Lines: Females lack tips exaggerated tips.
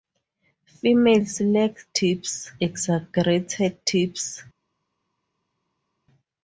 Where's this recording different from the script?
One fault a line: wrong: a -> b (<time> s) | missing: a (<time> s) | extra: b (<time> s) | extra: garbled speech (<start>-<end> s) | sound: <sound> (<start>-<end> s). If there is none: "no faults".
no faults